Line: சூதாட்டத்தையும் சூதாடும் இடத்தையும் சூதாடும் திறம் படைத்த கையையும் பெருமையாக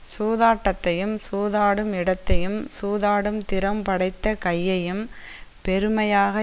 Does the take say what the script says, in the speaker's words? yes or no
yes